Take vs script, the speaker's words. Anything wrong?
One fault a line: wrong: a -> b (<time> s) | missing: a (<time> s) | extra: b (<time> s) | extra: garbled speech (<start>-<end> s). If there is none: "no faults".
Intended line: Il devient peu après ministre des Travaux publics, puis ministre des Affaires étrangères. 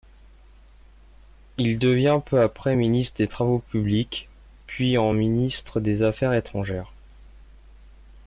extra: en (5.0 s)